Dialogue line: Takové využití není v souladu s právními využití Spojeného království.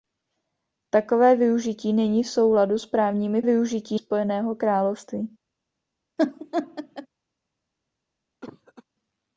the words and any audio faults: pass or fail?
fail